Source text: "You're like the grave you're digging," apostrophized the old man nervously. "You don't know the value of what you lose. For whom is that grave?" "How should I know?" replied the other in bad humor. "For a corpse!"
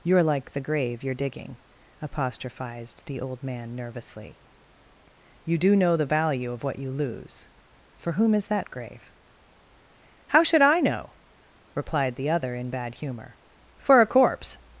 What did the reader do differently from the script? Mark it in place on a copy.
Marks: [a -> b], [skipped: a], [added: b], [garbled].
"You're like the grave you're digging," apostrophized the old man nervously. "You [don't -> do] know the value of what you lose. For whom is that grave?" "How should I know?" replied the other in bad humor. "For a corpse!"